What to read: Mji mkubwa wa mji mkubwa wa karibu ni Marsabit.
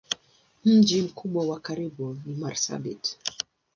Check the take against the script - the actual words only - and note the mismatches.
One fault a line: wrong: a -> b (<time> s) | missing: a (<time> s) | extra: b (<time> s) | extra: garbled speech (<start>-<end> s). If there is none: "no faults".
missing: mji mkubwa wa (1.6 s)